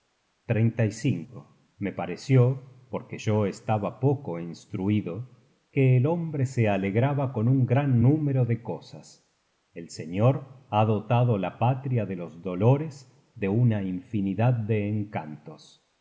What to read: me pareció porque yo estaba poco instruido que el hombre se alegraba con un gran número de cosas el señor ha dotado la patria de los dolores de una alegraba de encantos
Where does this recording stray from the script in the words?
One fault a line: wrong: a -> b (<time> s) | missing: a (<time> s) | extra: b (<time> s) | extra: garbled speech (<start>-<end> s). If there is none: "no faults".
wrong: alegraba -> infinidad (13.8 s)